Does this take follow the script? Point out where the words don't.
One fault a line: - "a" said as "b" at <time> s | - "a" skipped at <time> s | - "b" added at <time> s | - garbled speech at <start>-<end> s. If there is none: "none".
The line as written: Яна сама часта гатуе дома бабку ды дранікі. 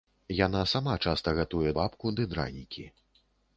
- "дома" skipped at 1.7 s